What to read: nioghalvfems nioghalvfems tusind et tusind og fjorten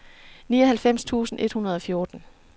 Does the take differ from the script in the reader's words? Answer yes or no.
yes